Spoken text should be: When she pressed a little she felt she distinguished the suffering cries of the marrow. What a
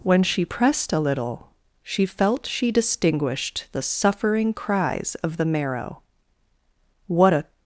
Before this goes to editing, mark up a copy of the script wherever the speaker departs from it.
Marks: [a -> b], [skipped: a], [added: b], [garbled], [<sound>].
When she pressed a little she felt she distinguished the suffering cries of the marrow. What a